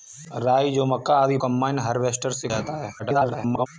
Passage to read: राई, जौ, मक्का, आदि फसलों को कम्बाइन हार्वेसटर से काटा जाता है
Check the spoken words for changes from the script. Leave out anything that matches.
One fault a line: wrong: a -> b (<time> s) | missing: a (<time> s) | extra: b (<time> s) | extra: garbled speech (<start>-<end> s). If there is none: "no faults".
missing: फसलों को (1.4 s)
missing: काटा (2.5 s)
extra: garbled speech (3.0-3.7 s)